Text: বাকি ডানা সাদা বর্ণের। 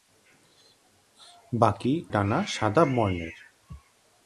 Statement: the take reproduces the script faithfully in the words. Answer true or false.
true